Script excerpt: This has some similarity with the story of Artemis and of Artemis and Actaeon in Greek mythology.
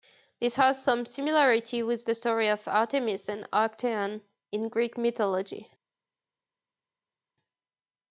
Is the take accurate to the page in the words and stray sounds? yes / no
no